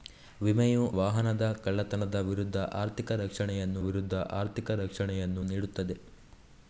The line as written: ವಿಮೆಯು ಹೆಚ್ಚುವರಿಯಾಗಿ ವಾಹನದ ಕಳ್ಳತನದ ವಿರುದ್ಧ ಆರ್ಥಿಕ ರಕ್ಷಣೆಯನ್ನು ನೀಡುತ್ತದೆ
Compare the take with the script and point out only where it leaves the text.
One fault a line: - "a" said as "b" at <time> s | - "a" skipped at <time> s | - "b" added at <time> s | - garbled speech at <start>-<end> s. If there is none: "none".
- "ಹೆಚ್ಚುವರಿಯಾಗಿ" skipped at 0.8 s
- "ವಿರುದ್ಧ ಆರ್ಥಿಕ ರಕ್ಷಣೆಯನ್ನು" added at 3.8 s